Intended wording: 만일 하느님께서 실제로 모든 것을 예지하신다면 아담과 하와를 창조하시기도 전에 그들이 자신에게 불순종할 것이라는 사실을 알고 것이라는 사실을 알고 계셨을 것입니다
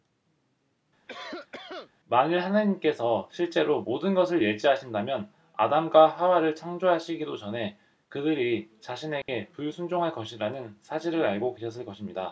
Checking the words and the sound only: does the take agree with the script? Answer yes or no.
no